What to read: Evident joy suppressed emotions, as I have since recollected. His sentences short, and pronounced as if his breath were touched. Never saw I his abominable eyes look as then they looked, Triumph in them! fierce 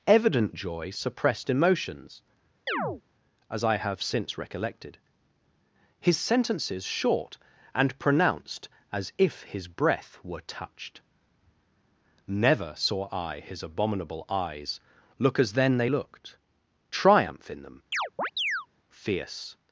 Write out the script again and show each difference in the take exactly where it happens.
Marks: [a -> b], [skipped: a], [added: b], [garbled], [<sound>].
Evident joy suppressed emotions, [chirp] as I have since recollected. His sentences short, and pronounced as if his breath were touched. Never saw I his abominable eyes look as then they looked, Triumph in them! [chirp] fierce